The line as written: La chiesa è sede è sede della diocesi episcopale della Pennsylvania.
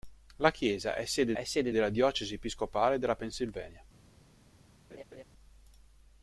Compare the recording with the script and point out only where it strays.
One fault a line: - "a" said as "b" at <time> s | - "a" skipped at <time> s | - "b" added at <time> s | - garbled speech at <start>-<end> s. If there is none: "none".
none